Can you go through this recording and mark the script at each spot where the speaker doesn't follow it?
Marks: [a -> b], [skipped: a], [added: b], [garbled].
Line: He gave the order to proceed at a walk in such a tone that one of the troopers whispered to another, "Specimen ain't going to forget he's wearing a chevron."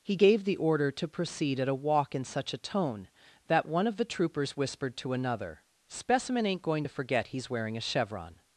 He gave the order to proceed at a walk in such a tone that one of the troopers whispered to another, "Specimen ain't going to forget he's wearing a chevron."